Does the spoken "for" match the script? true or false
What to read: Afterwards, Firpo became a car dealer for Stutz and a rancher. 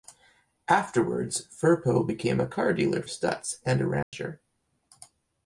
false